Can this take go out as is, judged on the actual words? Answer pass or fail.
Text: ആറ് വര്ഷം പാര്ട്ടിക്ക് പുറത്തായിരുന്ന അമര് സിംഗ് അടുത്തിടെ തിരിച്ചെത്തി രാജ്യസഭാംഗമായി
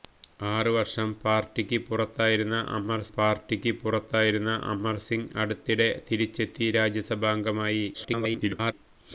fail